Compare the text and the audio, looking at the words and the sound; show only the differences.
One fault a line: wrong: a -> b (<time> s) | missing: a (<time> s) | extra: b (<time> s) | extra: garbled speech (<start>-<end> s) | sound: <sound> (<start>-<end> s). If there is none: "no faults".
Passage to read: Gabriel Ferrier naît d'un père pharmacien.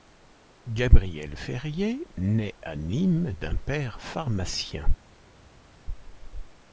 extra: à Nîmes (2.6 s)